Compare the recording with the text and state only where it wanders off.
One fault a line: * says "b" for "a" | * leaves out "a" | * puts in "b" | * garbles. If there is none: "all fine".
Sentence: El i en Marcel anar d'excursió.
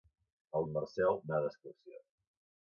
all fine